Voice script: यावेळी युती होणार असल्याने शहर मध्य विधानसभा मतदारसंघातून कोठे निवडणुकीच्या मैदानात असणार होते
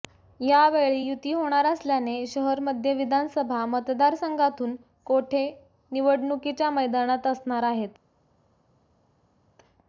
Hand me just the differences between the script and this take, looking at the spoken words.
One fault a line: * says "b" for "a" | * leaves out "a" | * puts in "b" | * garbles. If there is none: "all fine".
* says "आहेत" for "होते"